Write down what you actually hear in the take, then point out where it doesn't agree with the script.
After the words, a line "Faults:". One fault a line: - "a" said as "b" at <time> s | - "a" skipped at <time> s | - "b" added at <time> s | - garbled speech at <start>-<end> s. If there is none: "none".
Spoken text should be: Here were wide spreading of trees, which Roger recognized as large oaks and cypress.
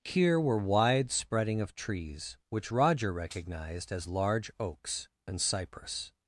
Here were wide spreading of trees, which Roger recognized as large oaks and cypress.
Faults:
none